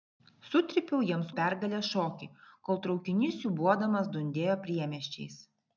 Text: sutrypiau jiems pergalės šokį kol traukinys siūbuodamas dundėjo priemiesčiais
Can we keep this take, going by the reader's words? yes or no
yes